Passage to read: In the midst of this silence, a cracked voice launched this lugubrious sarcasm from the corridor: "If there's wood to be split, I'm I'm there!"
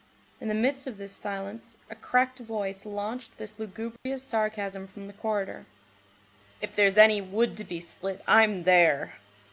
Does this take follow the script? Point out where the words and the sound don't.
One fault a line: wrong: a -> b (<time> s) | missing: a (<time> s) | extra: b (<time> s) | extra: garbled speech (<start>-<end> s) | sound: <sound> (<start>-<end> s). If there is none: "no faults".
sound: dropout (4.0-4.1 s)
extra: any (7.0 s)
missing: I'm (8.6 s)